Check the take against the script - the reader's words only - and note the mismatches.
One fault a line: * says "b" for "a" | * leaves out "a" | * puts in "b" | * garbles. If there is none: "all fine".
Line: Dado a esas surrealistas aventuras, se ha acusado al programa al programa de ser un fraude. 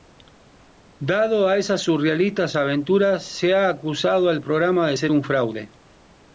* leaves out "al programa"